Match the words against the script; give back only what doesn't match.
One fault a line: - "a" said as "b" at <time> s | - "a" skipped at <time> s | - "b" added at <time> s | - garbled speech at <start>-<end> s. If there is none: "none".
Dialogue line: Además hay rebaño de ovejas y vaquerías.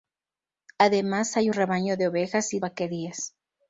none